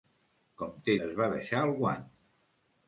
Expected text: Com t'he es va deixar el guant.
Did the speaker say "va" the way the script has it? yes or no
yes